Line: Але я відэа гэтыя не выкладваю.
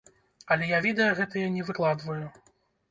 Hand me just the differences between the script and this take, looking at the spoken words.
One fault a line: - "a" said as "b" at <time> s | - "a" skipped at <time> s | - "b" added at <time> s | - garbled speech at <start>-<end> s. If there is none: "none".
none